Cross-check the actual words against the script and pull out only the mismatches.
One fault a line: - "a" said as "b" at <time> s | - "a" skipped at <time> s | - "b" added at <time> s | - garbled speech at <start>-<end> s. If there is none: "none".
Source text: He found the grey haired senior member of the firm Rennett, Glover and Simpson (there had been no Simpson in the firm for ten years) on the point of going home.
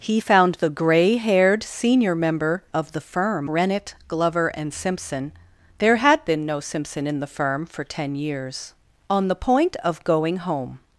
none